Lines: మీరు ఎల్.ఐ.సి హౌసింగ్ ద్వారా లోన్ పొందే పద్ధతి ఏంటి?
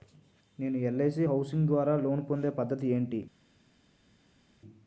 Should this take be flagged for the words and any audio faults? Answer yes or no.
yes